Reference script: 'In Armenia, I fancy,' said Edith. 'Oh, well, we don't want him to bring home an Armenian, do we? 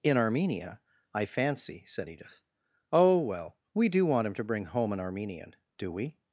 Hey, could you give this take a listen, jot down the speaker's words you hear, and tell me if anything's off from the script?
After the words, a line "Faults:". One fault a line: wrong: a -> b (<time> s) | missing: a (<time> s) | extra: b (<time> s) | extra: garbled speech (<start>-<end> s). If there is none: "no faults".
'In Armenia, I fancy,' said Edith. 'Oh, well, we do want him to bring home an Armenian, do we?
Faults:
wrong: don't -> do (3.9 s)